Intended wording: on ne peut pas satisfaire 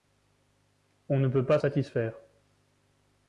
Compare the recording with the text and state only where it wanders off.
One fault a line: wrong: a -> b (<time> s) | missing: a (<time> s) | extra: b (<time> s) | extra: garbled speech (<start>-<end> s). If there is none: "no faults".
no faults